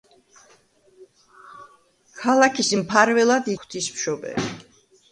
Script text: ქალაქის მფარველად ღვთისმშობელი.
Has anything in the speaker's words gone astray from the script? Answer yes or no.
no